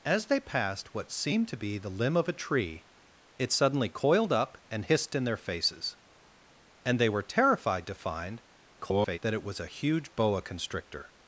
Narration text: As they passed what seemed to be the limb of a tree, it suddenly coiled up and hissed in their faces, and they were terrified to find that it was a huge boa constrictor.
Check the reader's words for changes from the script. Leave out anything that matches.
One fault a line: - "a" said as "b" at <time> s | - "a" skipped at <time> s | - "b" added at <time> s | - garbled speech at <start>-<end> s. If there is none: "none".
- garbled speech at 8.8-9.2 s